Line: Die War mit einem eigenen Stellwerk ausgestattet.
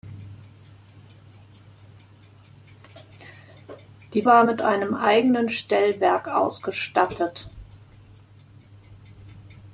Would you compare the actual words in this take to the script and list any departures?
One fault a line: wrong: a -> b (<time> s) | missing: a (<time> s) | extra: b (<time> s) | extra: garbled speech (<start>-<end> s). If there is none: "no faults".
no faults